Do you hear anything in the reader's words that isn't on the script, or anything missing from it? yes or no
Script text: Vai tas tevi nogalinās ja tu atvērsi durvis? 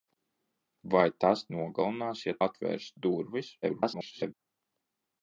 yes